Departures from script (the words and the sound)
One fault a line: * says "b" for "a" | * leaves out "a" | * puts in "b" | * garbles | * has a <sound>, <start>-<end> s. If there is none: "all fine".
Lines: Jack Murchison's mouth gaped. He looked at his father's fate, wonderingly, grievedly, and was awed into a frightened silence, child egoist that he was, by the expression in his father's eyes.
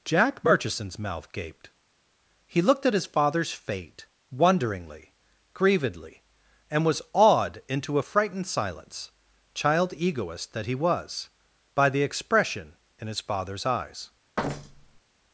* has a thud, 14.4-15.0 s